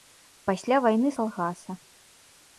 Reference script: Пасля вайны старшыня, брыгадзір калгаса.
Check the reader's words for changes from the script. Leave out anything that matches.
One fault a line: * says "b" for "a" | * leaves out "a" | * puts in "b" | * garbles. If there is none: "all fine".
* leaves out "старшыня брыгадзір"